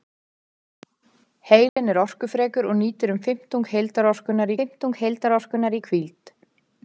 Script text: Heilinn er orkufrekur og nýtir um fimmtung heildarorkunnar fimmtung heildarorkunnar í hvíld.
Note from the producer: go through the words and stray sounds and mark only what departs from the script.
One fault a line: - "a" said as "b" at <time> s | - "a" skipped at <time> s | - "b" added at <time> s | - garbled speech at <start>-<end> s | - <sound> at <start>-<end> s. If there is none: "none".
- dropout at 1.7-1.8 s